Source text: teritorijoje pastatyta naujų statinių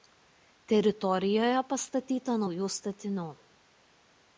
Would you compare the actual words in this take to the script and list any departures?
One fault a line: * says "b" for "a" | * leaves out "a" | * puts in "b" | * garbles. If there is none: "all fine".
all fine